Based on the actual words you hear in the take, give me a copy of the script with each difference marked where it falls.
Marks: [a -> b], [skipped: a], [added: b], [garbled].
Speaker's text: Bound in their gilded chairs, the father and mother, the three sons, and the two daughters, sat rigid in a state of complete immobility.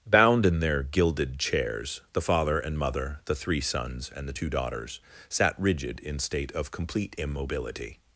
Bound in their gilded chairs, the father and mother, the three sons, and the two daughters, sat rigid in [skipped: a] state of complete immobility.